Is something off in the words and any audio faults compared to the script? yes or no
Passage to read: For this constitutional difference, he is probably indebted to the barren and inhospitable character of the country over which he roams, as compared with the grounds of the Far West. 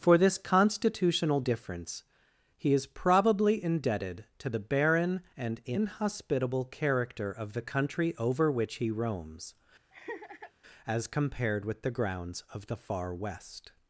yes